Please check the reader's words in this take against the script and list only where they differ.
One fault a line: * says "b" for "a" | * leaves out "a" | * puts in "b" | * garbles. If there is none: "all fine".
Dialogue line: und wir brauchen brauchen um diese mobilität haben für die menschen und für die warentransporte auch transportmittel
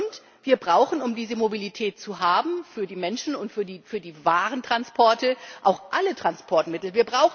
* leaves out "brauchen"
* puts in "zu"
* puts in "alle"